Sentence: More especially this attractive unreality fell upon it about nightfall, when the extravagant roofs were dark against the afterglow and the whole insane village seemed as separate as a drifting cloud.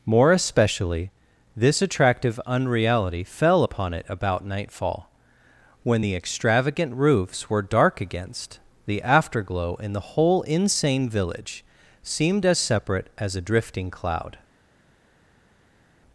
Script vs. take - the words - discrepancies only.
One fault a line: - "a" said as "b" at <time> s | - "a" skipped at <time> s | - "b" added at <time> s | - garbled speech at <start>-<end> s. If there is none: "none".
- "and" said as "in" at 9.8 s